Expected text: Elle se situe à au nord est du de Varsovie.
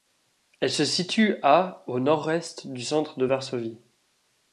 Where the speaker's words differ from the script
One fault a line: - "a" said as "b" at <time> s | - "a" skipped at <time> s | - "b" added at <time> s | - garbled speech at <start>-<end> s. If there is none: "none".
- "centre" added at 2.8 s